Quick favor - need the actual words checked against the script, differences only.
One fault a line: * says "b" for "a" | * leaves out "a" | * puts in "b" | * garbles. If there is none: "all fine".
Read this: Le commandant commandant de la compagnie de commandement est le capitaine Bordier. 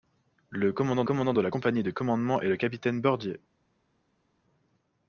all fine